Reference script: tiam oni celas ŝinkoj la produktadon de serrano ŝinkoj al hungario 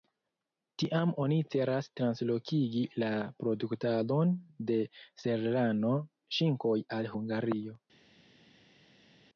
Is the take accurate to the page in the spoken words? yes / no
no